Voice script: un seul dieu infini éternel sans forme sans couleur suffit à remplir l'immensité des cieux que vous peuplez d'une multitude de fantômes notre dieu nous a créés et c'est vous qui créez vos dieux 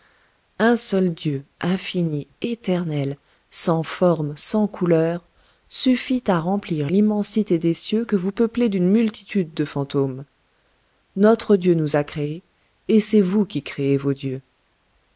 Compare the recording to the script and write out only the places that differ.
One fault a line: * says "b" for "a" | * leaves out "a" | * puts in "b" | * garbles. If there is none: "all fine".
all fine